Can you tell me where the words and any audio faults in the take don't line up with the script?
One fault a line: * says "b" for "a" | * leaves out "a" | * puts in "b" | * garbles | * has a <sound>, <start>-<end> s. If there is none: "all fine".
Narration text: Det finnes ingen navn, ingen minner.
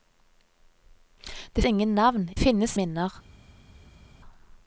* leaves out "finnes"
* says "finnes" for "ingen"